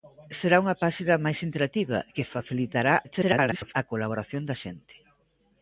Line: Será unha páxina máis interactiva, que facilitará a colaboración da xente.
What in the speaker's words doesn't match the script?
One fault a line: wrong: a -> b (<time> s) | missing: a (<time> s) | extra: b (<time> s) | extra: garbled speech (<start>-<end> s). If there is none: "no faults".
extra: garbled speech (3.0-3.7 s)